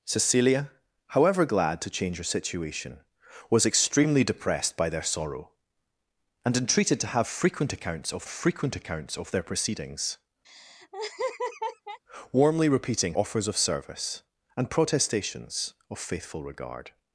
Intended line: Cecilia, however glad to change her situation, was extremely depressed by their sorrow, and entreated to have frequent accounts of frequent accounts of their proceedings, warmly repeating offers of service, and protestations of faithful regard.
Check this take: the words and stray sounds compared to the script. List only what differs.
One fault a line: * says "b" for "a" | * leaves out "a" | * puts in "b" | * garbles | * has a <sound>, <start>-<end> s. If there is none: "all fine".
* has a laugh, 10.4-12.0 s